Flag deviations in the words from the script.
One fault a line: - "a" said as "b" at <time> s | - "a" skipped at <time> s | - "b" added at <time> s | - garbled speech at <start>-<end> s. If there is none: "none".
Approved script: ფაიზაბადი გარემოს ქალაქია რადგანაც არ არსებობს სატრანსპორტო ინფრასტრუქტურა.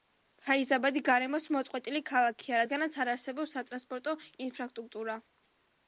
- "მოწყვეტილი" added at 1.6 s